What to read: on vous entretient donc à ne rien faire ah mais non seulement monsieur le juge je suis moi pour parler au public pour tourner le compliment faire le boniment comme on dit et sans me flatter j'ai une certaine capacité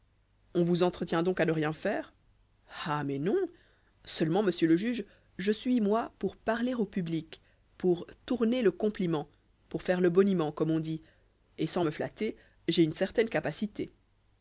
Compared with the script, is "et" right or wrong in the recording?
right